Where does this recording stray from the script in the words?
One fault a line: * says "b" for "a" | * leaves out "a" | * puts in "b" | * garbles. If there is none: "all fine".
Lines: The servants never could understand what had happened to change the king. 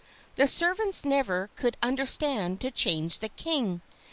* leaves out "what had happened"